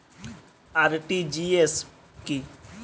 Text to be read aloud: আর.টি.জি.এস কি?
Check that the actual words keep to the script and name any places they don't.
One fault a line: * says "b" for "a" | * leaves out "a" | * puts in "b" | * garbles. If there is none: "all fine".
all fine